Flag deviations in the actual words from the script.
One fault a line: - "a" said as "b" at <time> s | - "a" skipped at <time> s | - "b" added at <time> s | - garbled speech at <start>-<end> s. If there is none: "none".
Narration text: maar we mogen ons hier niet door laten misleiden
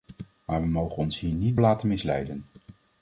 - "door" skipped at 1.6 s